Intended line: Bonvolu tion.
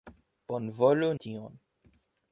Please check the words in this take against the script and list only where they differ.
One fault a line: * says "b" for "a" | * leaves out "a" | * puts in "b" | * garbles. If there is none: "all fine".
all fine